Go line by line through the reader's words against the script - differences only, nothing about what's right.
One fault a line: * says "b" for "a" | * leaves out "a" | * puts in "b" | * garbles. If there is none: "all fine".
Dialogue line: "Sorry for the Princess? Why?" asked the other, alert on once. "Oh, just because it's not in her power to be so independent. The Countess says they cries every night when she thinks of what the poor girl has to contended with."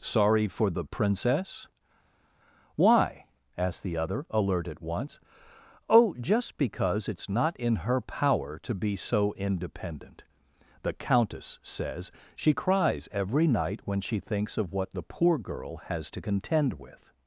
* says "at" for "on"
* says "she" for "they"
* says "contend" for "contended"